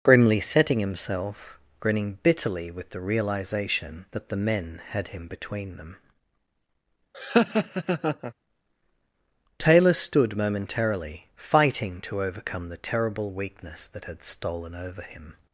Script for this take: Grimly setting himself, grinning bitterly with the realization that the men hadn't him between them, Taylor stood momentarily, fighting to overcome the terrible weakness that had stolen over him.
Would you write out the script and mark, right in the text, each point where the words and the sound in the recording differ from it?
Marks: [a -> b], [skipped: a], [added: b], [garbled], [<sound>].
Grimly setting himself, grinning bitterly with the realization that the men [hadn't -> had] him between them, [laugh] Taylor stood momentarily, fighting to overcome the terrible weakness that had stolen over him.